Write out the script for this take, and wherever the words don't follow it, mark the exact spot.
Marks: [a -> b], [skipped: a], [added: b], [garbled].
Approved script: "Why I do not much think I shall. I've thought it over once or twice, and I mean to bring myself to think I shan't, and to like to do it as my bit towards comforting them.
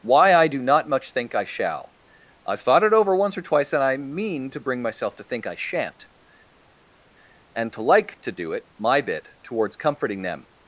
"Why I do not much think I shall. I've thought it over once or twice, and I mean to bring myself to think I shan't, and to like to do it [skipped: as] my bit towards comforting them.